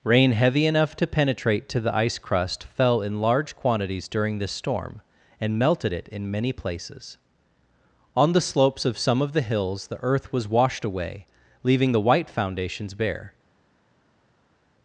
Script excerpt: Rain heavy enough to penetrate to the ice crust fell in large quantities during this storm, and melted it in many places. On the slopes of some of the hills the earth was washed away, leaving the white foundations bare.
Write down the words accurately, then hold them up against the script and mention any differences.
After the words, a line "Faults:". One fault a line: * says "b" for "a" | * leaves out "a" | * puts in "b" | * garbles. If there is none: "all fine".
Rain heavy enough to penetrate to the ice crust fell in large quantities during this storm, and melted it in many places. On the slopes of some of the hills the earth was washed away, leaving the white foundations bare.
Faults:
all fine